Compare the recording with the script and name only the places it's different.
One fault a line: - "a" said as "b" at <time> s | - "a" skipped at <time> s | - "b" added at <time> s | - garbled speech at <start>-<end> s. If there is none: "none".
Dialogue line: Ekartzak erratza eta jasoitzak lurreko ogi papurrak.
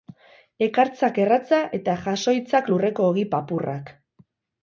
none